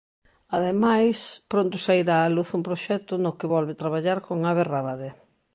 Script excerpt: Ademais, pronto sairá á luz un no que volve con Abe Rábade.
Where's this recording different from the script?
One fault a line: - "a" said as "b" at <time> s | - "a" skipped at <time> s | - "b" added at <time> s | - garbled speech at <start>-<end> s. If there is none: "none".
- "proxecto" added at 2.7 s
- "traballar" added at 3.8 s